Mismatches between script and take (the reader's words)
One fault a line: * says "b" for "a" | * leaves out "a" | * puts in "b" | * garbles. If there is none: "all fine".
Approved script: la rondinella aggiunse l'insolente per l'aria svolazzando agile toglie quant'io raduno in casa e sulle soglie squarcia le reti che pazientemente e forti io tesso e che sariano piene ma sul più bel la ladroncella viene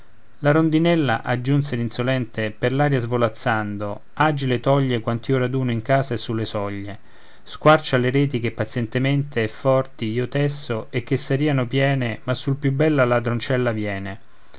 all fine